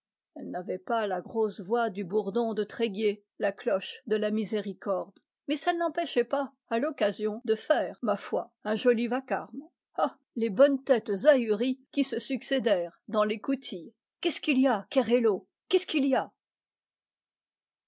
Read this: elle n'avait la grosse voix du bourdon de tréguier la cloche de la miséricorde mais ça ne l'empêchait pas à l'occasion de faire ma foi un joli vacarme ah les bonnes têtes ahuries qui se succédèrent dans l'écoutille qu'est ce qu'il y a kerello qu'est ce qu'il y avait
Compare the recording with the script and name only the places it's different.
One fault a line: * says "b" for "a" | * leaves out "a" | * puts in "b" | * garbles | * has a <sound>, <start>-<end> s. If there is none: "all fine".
* puts in "pas"
* says "a" for "avait"